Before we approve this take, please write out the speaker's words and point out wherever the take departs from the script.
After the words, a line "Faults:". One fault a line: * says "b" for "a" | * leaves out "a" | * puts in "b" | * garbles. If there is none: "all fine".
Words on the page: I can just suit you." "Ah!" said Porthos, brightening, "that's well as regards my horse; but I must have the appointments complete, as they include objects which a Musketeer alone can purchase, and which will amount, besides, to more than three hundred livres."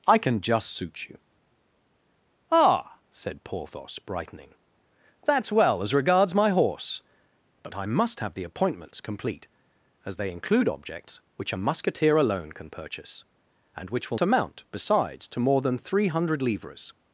I can just suit you." "Ah!" said Porthos, brightening, "that's well as regards my horse; but I must have the appointments complete, as they include objects which a Musketeer alone can purchase, and which will amount, besides, to more than three hundred livres."
Faults:
all fine